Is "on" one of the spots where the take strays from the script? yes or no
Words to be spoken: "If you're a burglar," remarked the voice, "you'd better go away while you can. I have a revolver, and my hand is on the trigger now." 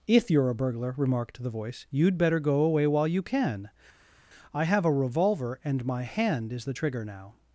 yes